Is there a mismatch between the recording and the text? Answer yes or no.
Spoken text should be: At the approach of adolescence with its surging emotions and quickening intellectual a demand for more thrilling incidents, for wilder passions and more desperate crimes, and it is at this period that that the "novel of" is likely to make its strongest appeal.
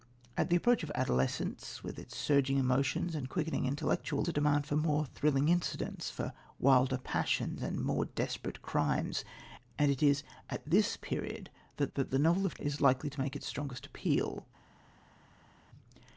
no